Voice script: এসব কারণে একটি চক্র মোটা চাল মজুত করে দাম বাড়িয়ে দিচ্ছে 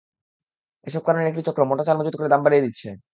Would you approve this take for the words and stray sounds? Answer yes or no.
yes